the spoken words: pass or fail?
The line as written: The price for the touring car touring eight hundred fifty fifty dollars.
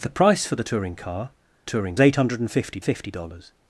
pass